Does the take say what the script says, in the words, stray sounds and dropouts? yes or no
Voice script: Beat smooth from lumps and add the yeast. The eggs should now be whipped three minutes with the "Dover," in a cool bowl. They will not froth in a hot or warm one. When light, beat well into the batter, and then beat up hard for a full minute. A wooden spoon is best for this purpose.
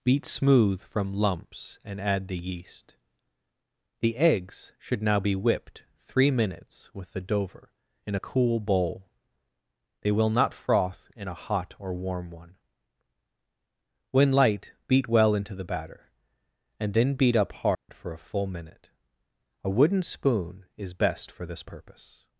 no